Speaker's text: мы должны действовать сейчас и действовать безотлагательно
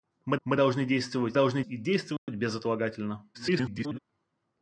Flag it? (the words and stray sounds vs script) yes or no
yes